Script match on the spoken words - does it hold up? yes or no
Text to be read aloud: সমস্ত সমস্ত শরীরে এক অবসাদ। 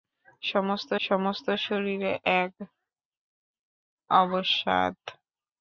yes